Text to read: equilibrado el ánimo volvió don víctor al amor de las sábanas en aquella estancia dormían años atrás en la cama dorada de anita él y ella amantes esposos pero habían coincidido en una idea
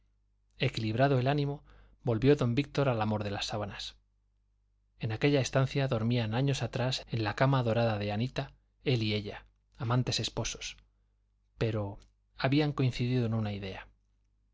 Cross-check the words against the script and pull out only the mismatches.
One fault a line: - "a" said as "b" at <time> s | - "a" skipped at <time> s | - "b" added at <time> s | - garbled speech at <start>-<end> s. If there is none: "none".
none